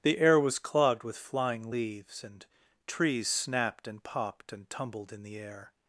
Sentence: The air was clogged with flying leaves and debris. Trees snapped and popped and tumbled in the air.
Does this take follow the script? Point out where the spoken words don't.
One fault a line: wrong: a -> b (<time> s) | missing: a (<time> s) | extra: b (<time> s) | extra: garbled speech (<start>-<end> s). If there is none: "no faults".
missing: debris (2.5 s)